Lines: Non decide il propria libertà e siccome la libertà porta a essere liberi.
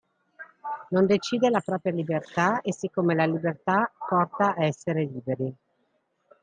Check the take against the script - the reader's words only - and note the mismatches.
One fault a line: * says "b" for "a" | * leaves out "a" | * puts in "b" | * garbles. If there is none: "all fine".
* says "la" for "il"